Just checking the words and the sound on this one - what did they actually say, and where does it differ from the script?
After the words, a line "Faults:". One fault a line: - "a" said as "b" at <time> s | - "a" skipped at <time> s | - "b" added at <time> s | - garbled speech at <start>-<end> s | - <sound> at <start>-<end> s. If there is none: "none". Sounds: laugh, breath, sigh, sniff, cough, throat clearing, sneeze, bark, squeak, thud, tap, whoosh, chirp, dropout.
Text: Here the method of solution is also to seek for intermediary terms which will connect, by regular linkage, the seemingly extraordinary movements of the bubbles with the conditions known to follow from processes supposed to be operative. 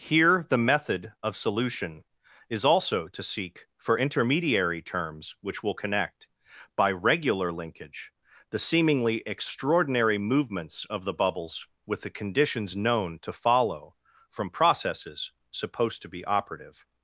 Here the method of solution is also to seek for intermediary terms which will connect, by regular linkage, the seemingly extraordinary movements of the bubbles with the conditions known to follow from processes supposed to be operative.
Faults:
none